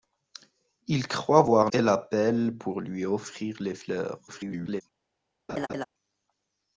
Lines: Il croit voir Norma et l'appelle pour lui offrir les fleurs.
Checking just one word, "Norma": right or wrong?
wrong